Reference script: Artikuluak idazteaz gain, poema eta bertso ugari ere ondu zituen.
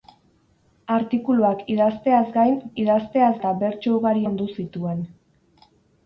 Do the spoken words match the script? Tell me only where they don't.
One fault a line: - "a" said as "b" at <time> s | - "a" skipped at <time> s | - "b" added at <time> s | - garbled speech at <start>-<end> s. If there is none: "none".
- "poema" said as "idazteaz" at 2.8 s
- "ere" skipped at 4.2 s